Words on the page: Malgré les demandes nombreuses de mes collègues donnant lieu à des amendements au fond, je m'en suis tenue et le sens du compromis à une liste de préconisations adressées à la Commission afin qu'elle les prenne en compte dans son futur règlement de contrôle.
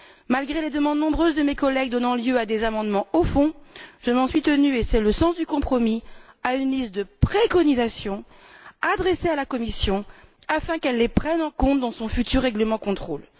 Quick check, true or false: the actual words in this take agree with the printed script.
false